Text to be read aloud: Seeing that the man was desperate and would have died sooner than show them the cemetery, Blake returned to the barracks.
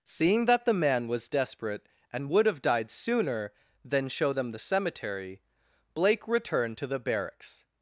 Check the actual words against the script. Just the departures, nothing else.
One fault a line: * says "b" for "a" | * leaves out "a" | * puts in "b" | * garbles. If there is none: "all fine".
all fine